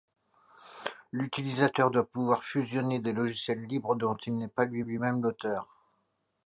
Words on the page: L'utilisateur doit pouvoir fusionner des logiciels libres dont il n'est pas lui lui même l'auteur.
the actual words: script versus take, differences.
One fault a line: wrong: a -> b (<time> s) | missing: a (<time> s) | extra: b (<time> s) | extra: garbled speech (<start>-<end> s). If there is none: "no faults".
no faults